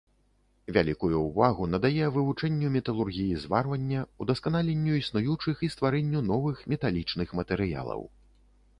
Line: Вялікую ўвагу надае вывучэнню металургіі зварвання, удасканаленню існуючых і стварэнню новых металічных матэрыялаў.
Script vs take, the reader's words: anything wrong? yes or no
no